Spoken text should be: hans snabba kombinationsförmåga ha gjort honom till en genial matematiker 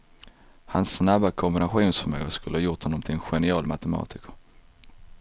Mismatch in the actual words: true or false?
true